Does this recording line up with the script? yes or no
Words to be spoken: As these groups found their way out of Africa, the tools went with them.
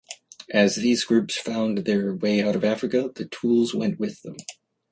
yes